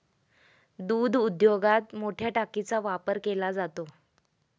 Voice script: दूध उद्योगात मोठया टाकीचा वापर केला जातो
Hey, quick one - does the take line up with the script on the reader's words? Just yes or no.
yes